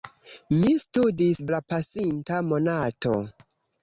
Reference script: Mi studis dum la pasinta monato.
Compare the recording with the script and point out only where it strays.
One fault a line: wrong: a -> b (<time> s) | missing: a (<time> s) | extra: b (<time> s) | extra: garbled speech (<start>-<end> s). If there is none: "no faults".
missing: dum (1.4 s)